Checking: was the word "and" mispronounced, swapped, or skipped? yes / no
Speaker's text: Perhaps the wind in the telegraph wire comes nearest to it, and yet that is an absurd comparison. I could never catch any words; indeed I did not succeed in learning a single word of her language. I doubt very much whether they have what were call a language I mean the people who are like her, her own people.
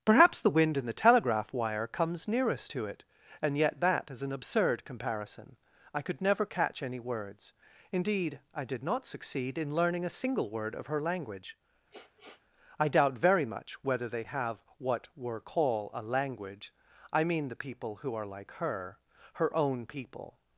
no